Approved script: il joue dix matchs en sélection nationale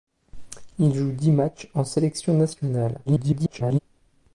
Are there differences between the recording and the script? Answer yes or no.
yes